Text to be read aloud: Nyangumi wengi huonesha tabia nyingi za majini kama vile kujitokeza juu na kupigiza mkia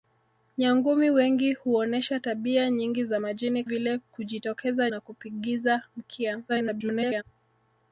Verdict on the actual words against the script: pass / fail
fail